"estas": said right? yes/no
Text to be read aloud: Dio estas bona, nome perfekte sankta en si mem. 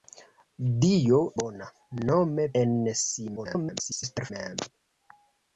no